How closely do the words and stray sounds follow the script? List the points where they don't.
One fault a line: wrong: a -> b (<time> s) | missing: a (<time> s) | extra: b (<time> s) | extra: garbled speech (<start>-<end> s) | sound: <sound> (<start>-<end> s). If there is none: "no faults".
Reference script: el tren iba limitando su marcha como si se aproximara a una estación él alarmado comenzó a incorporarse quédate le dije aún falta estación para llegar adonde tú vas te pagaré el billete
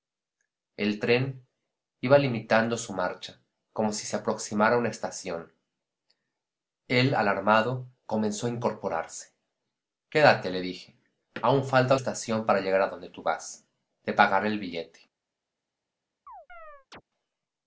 sound: chirp (16.3-17.0 s)